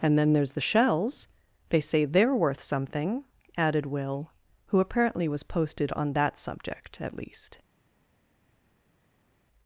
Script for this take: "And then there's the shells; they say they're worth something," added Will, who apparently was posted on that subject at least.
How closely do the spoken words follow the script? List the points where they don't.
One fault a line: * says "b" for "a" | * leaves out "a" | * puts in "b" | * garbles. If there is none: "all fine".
all fine